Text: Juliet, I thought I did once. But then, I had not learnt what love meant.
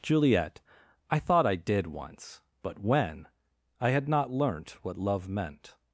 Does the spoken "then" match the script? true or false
false